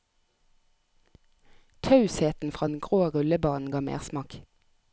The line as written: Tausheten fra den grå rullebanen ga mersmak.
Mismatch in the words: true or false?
false